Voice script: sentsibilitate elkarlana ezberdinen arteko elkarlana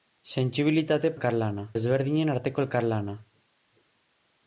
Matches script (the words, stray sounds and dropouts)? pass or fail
pass